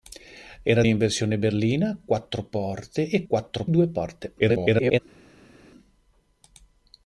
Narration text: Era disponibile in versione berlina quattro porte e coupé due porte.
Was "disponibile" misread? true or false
true